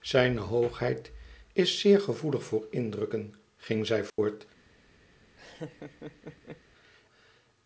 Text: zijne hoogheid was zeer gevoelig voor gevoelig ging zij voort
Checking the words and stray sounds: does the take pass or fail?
fail